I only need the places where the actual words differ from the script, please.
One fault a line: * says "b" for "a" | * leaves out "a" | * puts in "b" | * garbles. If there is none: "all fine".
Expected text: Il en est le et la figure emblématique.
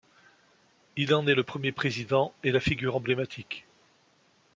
* puts in "premier président"